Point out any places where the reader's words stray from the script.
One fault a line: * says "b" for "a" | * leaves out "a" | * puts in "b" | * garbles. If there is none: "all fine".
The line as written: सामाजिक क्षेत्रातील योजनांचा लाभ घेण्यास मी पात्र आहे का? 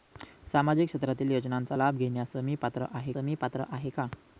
* puts in "मी पात्र आहे"